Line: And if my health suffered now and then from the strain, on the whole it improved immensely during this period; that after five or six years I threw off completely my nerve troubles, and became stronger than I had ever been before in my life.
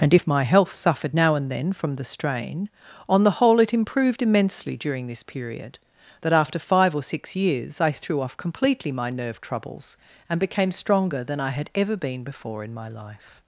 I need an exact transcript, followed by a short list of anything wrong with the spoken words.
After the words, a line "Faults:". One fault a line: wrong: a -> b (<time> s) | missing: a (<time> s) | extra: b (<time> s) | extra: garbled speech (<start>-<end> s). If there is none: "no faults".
And if my health suffered now and then from the strain, on the whole it improved immensely during this period; that after five or six years I threw off completely my nerve troubles, and became stronger than I had ever been before in my life.
Faults:
no faults